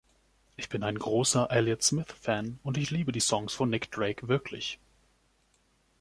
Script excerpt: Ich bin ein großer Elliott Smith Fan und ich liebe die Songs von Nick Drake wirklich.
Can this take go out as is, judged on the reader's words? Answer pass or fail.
pass